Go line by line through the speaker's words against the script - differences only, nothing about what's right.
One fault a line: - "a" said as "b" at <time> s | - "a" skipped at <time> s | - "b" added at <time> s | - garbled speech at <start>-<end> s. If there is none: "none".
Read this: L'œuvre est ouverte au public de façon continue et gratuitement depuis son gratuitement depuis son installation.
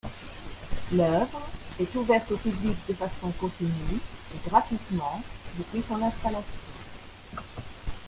- "gratuitement depuis son" skipped at 6.0 s